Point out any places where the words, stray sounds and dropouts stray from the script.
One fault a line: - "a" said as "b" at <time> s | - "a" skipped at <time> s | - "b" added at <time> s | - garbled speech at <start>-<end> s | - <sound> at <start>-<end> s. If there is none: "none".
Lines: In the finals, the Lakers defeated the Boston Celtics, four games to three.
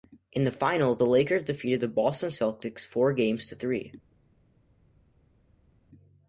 none